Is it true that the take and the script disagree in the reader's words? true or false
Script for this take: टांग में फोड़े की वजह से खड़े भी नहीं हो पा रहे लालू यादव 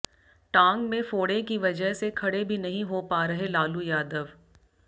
false